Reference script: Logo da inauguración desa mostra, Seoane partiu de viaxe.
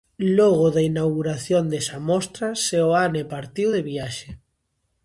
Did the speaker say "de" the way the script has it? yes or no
yes